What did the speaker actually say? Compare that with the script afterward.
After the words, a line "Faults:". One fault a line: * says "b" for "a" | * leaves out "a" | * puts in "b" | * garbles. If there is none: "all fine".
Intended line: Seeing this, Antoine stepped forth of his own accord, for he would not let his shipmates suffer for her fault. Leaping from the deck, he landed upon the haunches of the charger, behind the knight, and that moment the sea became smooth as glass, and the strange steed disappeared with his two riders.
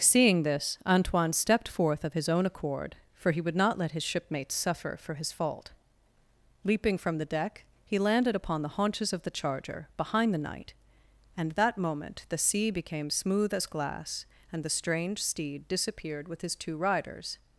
Seeing this, Antoine stepped forth of his own accord, for he would not let his shipmates suffer for his fault. Leaping from the deck, he landed upon the haunches of the charger, behind the knight, and that moment the sea became smooth as glass, and the strange steed disappeared with his two riders.
Faults:
* says "his" for "her"